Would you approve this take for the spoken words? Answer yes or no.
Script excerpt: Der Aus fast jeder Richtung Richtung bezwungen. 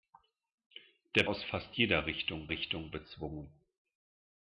yes